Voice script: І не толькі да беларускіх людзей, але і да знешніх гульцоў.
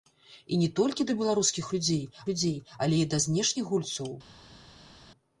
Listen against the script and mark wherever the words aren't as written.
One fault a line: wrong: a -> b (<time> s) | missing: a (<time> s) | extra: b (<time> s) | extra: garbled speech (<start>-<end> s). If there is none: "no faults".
extra: людзей (2.3 s)